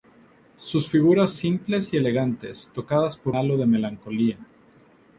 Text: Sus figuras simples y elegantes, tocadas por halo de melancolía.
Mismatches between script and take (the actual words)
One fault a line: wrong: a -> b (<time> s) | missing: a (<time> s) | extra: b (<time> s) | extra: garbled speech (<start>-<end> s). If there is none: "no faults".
no faults